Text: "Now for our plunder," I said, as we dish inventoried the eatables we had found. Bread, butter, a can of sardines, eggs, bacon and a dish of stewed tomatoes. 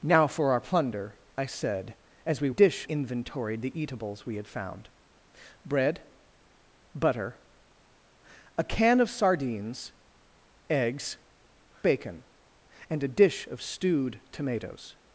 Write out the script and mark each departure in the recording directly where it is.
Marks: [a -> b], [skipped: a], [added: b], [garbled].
"Now for our plunder," I said, as we dish inventoried the eatables we had found. Bread, butter, a can of sardines, eggs, bacon and a dish of stewed tomatoes.